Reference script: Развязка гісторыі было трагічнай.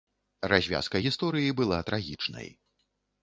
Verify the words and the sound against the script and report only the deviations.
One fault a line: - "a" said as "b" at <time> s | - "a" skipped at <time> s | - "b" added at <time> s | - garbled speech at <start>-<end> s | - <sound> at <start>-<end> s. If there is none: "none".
- "было" said as "была" at 1.6 s